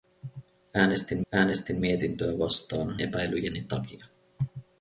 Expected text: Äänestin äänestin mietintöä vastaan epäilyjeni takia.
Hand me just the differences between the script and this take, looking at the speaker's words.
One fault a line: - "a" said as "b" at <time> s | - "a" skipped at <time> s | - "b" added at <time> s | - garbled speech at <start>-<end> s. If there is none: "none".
none